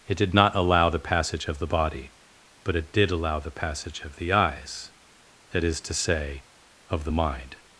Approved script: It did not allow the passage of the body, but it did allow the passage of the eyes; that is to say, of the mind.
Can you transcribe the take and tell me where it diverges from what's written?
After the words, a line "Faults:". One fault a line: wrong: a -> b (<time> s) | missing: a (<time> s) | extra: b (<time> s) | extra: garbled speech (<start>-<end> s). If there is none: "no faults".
It did not allow the passage of the body, but it did allow the passage of the eyes; that is to say, of the mind.
Faults:
no faults